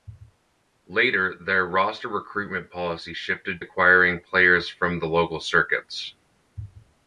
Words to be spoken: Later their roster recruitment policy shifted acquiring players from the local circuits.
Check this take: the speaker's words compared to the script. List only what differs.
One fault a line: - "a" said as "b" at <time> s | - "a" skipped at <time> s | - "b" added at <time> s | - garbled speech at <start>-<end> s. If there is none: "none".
none